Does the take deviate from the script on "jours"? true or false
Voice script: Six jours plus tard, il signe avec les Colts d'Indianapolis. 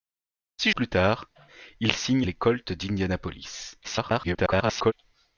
true